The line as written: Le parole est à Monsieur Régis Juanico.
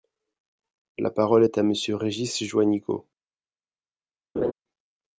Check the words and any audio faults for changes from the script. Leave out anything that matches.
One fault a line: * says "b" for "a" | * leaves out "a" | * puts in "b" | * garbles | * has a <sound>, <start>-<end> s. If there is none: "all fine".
* says "La" for "Le"
* has a laugh, 4.4-4.5 s